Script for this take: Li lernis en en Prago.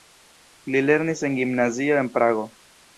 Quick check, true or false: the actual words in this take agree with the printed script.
false